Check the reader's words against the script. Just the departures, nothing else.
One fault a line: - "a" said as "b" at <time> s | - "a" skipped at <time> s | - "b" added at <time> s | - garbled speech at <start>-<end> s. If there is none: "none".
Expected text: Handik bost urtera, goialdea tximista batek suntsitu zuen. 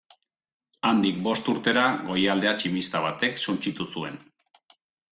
none